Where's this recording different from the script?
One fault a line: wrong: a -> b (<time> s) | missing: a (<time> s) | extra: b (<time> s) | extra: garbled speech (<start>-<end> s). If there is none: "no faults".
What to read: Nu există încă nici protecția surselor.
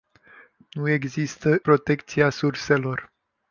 missing: încă nici (1.6 s)